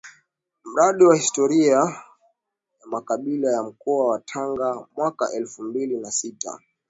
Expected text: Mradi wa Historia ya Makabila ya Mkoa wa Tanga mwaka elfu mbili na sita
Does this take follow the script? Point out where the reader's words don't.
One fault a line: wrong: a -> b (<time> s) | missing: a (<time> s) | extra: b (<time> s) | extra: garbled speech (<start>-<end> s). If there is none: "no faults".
no faults